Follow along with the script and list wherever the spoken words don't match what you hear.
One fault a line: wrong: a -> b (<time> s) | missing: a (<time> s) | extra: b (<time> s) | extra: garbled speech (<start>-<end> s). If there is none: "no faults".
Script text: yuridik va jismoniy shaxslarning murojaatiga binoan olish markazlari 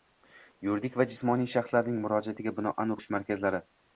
no faults